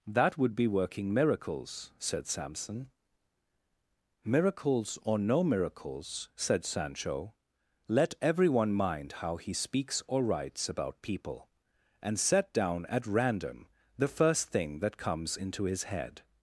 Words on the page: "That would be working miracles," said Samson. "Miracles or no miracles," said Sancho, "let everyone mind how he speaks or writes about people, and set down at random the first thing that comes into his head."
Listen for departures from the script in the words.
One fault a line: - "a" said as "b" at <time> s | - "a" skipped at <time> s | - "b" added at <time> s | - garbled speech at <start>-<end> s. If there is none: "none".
none